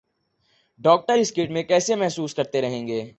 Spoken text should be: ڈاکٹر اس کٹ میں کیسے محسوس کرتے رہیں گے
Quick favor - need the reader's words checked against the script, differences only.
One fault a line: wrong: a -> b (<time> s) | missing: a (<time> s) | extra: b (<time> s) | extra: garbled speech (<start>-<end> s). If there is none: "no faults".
no faults